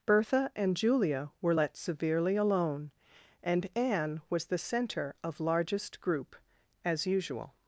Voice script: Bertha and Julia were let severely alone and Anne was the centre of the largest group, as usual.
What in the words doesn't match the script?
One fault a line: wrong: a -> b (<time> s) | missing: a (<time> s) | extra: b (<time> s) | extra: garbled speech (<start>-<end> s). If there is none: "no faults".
missing: the (5.4 s)